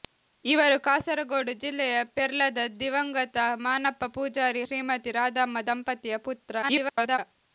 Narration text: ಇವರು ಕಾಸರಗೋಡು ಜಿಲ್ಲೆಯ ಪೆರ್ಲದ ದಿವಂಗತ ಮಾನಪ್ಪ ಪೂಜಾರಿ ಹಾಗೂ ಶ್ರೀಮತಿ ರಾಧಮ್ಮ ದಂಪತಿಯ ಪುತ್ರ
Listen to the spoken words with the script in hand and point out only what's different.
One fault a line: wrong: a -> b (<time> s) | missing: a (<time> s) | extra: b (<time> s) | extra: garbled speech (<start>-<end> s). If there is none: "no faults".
missing: ಹಾಗೂ (4.6 s)
extra: garbled speech (6.6-7.2 s)